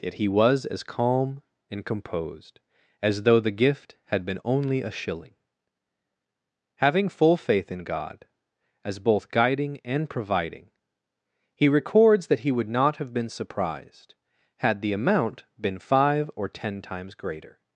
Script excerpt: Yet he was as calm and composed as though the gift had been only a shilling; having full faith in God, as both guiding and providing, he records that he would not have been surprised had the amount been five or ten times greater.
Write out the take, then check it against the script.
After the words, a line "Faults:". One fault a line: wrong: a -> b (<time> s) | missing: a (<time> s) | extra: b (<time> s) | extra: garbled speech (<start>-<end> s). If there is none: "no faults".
Yet he was as calm and composed as though the gift had been only a shilling; having full faith in God, as both guiding and providing, he records that he would not have been surprised had the amount been five or ten times greater.
Faults:
no faults